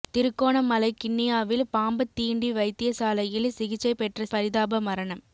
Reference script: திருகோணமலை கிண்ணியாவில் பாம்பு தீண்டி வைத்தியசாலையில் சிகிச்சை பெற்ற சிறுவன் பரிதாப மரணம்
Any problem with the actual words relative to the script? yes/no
yes